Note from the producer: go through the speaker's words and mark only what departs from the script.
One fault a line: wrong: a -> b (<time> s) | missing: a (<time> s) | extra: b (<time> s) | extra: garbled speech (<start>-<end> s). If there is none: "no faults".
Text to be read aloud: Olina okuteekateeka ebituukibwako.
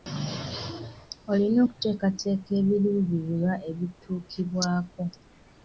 extra: ebiruubirirwa (2.6 s)